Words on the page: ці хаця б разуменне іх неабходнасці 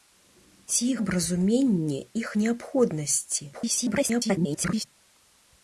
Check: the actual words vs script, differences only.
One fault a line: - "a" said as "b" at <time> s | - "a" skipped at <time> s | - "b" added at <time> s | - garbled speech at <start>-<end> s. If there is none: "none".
- "хаця" skipped at 0.9 s
- garbled speech at 3.5-4.8 s